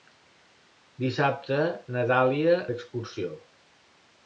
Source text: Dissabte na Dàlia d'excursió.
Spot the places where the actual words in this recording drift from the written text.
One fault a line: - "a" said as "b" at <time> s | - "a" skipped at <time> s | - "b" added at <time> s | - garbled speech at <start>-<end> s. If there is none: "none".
none